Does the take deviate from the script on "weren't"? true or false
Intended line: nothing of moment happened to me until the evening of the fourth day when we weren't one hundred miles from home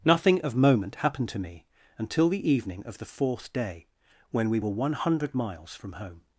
true